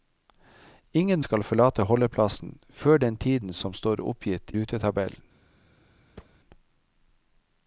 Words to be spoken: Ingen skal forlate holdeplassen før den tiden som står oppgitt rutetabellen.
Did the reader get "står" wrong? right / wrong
right